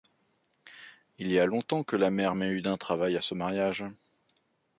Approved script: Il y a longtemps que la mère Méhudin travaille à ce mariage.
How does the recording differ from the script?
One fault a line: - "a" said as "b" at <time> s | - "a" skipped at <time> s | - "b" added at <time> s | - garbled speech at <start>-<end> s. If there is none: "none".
none